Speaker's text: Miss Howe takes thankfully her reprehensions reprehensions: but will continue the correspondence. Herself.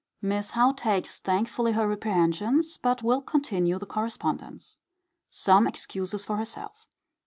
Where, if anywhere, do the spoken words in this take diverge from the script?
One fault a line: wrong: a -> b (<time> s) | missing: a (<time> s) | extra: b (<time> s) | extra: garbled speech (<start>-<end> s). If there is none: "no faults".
missing: reprehensions (2.8 s)
extra: Some excuses for (5.3 s)